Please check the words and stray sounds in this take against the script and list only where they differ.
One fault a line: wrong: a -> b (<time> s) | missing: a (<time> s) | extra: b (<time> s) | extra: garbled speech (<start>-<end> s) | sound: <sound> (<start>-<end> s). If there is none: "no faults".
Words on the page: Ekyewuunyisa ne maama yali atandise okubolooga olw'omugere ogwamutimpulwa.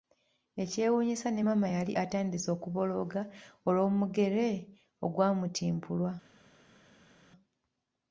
no faults